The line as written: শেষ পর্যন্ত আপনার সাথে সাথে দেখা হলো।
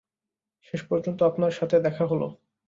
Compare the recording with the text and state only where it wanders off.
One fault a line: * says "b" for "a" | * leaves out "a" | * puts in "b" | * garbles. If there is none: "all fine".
* leaves out "সাথে"